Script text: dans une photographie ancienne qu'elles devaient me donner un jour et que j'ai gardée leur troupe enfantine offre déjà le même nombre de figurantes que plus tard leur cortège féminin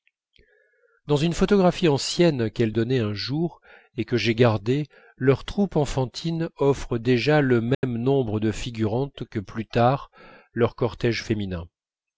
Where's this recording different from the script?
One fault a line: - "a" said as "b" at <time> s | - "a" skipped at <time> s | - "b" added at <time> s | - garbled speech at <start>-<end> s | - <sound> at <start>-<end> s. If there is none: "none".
- "devaient me" skipped at 2.7 s
- dropout at 7.7-7.8 s